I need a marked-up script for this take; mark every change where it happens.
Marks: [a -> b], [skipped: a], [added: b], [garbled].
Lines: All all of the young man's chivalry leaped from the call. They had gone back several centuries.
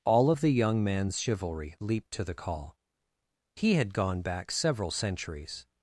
All [skipped: all] of the young man's chivalry leaped [from -> to] the call. [They -> He] had gone back several centuries.